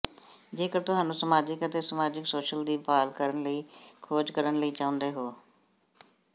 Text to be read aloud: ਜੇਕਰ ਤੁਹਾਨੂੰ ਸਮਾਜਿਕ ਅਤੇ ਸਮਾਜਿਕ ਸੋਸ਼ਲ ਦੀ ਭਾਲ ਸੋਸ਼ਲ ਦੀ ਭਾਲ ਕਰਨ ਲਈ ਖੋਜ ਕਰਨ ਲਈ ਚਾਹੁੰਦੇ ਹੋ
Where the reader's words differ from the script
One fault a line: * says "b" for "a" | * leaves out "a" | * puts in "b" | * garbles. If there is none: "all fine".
* leaves out "ਸੋਸ਼ਲ ਦੀ ਭਾਲ"